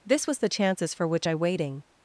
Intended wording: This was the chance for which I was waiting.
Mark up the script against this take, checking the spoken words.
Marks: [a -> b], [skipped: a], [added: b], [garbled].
This was the [chance -> chances] for which I [skipped: was] waiting.